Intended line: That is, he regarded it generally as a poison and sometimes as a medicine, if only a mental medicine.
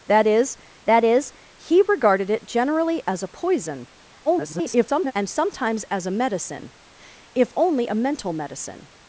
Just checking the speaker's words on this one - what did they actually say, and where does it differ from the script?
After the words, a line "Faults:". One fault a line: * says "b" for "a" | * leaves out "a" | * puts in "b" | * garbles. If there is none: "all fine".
That is that is, he regarded it generally as a poison [garbled] and sometimes as a medicine, if only a mental medicine.
Faults:
* puts in "that is"
* garbles